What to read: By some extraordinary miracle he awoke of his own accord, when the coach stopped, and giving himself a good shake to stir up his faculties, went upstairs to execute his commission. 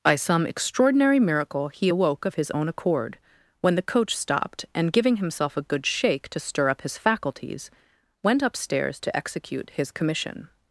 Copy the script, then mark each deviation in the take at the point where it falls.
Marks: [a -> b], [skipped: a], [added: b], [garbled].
By some extraordinary miracle he awoke of his own accord, when the coach stopped, and giving himself a good shake to stir up his faculties, went upstairs to execute his commission.